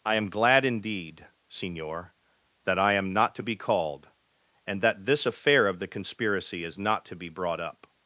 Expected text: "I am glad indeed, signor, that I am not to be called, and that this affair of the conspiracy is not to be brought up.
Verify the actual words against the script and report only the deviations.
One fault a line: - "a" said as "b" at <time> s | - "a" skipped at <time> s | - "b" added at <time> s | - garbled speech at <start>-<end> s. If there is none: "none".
none